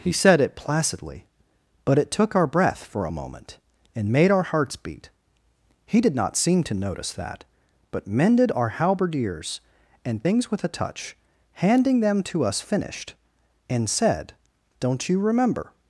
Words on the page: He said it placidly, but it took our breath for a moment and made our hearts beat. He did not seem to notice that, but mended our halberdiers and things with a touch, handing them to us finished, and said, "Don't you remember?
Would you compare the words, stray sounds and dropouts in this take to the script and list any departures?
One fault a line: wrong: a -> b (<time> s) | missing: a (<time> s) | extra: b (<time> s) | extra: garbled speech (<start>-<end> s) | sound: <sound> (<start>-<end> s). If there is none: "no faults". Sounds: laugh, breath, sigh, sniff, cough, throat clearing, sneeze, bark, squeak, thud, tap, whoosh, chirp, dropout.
no faults